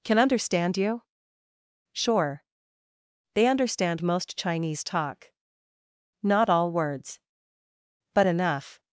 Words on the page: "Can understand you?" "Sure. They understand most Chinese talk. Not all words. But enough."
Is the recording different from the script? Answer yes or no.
no